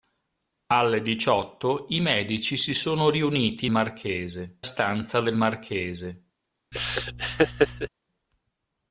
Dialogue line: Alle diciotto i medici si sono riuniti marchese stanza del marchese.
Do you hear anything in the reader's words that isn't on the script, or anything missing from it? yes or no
no